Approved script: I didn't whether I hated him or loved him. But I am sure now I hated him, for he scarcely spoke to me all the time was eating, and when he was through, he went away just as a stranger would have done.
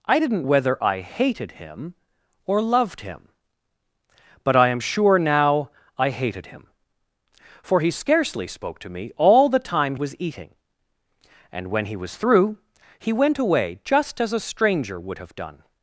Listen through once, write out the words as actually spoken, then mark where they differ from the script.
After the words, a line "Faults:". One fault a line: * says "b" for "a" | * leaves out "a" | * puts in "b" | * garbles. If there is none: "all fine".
I didn't whether I hated him or loved him. But I am sure now I hated him, for he scarcely spoke to me all the time was eating, and when he was through, he went away just as a stranger would have done.
Faults:
all fine